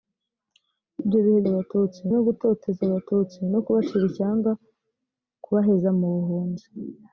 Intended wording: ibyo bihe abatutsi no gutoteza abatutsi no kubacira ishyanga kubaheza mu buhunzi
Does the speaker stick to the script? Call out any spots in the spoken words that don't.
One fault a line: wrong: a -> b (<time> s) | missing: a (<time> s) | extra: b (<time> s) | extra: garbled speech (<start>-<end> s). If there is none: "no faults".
no faults